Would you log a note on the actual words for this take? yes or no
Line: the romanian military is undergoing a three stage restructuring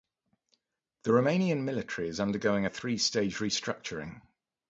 no